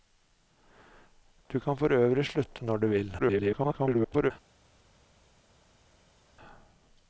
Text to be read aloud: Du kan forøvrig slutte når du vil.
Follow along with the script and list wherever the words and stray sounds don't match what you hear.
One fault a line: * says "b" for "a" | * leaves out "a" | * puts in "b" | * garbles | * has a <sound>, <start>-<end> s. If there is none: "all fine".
* garbles